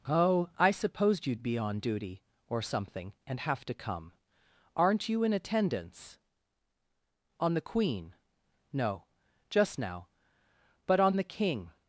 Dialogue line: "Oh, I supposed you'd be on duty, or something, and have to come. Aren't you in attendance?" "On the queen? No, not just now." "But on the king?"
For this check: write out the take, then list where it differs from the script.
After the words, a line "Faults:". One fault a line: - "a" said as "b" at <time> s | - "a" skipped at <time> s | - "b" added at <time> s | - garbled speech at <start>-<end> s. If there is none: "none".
"Oh, I supposed you'd be on duty, or something, and have to come. Aren't you in attendance?" "On the queen? No, just now." "But on the king?"
Faults:
- "not" skipped at 9.1 s